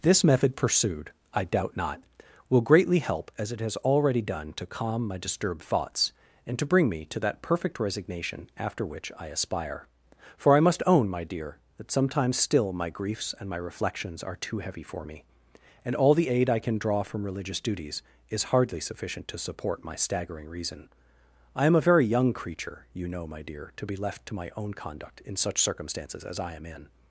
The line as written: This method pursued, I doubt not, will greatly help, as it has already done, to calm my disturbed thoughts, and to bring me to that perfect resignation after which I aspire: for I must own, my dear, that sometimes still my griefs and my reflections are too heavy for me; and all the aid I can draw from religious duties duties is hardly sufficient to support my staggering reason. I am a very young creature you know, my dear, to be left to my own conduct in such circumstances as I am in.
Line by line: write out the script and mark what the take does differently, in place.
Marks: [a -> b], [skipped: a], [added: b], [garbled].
This method pursued, I doubt not, will greatly help, as it has already done, to calm my disturbed thoughts, and to bring me to that perfect resignation after which I aspire: for I must own, my dear, that sometimes still my griefs and my reflections are too heavy for me; and all the aid I can draw from religious duties [skipped: duties] is hardly sufficient to support my staggering reason. I am a very young creature you know, my dear, to be left to my own conduct in such circumstances as I am in.